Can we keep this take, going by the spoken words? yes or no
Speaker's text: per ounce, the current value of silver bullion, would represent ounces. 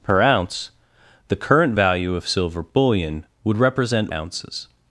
yes